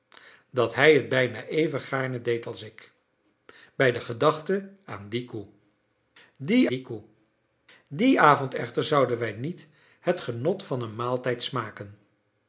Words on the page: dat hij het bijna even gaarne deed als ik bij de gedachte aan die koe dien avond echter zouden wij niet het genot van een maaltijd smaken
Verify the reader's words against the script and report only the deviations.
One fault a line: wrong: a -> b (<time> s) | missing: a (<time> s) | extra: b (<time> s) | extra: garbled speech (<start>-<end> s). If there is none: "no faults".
extra: die koe dien (6.7 s)